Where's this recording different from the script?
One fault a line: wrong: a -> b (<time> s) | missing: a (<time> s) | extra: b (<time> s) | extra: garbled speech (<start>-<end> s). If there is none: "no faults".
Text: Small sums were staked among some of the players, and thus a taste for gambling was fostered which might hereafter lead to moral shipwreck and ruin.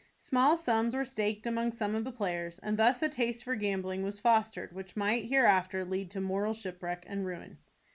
no faults